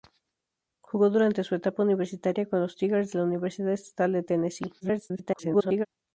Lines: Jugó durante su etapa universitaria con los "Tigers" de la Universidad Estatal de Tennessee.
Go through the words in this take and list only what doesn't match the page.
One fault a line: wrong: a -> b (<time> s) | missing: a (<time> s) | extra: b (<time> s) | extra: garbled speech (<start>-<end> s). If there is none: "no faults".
extra: garbled speech (4.8-5.9 s)